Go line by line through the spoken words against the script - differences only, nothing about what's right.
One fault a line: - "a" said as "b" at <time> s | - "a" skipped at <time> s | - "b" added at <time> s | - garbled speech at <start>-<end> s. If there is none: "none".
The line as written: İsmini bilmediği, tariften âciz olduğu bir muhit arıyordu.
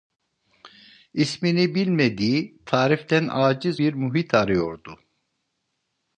- "olduğu" skipped at 3.8 s